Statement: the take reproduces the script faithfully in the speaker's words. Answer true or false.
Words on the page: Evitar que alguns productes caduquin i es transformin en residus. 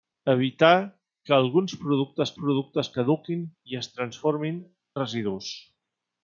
false